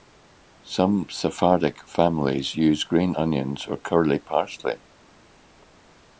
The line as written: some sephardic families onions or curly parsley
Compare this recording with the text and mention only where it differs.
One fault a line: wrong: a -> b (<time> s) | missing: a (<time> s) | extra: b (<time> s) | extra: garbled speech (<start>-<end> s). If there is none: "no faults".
extra: use green (2.6 s)